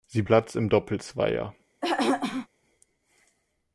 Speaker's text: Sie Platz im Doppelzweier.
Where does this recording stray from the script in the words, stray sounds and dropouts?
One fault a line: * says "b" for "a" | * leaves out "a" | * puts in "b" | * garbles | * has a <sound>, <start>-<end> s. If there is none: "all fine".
* has a throat clearing, 1.8-2.5 s